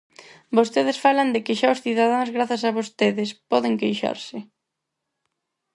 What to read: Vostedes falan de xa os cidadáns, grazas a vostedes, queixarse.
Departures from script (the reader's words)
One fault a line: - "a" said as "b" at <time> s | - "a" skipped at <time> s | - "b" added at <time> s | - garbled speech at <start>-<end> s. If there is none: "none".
- "que" added at 1.5 s
- "poden" added at 3.5 s